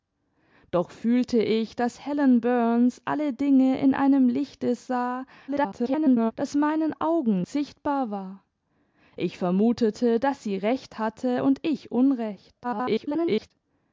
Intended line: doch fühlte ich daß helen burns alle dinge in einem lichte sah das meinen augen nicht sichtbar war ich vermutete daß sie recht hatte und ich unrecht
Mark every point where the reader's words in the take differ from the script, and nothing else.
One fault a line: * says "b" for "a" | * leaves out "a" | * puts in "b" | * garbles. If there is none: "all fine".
* garbles
* leaves out "nicht"
* garbles